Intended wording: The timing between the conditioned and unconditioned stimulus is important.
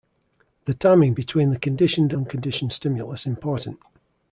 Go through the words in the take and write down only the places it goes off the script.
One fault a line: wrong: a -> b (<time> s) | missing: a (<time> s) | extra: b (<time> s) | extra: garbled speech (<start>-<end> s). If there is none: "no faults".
missing: and (2.1 s)
missing: is (3.3 s)